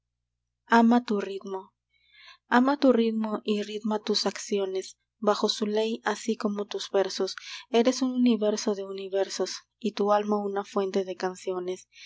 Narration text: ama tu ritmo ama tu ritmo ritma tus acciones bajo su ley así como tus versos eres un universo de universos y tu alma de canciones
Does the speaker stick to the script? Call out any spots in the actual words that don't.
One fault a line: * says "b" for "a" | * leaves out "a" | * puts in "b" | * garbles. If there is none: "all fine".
* puts in "y"
* puts in "una fuente"